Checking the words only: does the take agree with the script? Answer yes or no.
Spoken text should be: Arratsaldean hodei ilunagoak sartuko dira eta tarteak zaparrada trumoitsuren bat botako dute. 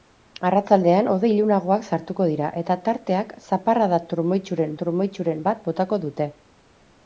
no